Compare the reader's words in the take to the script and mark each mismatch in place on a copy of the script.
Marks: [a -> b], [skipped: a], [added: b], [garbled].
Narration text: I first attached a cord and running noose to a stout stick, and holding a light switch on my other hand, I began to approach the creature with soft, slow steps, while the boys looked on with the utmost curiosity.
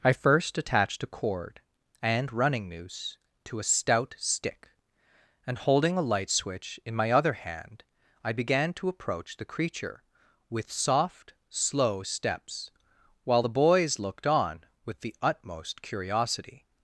I first attached a cord and running noose to a stout stick, and holding a light switch [on -> in] my other hand, I began to approach the creature with soft, slow steps, while the boys looked on with the utmost curiosity.